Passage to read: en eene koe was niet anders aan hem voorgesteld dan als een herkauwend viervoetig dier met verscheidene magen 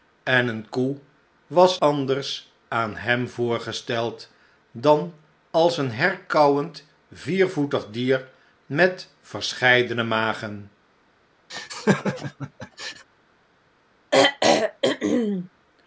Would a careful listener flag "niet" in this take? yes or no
yes